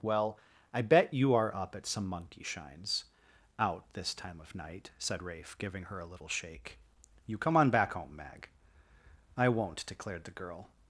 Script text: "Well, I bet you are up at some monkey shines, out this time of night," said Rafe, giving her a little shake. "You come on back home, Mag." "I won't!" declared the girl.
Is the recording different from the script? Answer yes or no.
no